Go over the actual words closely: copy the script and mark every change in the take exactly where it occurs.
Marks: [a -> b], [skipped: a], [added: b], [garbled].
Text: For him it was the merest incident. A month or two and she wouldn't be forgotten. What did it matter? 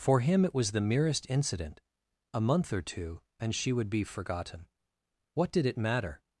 For him it was the merest incident. A month or two and she [wouldn't -> would] be forgotten. What did it matter?